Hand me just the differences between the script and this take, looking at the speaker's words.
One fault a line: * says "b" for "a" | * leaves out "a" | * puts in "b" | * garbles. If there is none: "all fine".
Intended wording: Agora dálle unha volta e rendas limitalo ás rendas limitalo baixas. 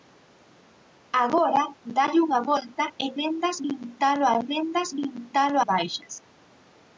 all fine